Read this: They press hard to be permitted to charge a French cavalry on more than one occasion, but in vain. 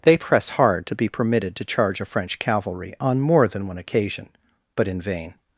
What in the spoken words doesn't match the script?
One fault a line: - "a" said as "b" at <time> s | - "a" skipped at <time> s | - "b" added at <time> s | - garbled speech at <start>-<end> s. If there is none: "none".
none